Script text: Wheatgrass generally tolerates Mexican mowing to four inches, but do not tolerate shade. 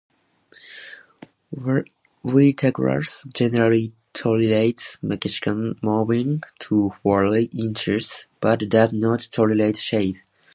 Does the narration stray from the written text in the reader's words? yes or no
yes